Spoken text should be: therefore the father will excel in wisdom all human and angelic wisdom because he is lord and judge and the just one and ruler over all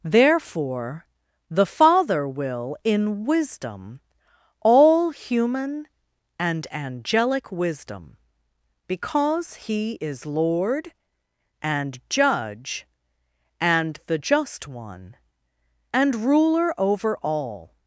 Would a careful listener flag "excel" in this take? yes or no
yes